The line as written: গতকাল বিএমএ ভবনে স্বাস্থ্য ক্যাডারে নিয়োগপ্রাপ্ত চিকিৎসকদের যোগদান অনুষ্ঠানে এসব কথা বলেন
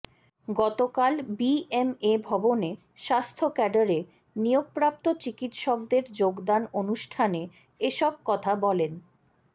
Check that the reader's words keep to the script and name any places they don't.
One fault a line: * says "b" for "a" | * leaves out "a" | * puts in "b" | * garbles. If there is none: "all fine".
all fine